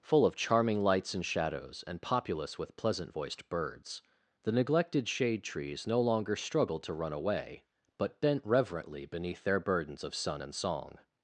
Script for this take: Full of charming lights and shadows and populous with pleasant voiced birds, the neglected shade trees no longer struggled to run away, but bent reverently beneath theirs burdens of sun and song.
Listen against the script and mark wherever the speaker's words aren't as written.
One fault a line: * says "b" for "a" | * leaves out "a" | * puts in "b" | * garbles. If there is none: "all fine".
* says "their" for "theirs"